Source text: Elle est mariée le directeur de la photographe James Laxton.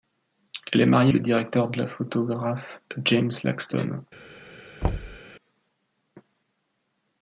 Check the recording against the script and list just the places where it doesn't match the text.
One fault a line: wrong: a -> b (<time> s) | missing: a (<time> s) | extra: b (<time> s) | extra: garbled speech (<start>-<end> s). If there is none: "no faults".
no faults